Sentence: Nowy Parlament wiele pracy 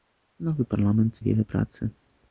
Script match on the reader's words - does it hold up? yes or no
yes